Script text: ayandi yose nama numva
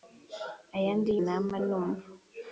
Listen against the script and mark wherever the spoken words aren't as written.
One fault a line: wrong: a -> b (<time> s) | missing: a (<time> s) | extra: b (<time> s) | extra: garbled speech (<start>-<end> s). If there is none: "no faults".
missing: yose (1.1 s)